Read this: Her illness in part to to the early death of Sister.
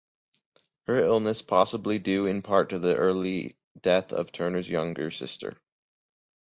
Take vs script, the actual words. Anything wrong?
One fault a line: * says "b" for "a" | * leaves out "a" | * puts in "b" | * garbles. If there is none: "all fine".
* puts in "possibly due"
* leaves out "to"
* puts in "Turner's younger"